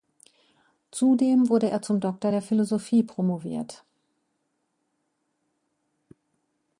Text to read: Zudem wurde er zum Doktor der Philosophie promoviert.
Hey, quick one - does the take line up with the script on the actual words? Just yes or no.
yes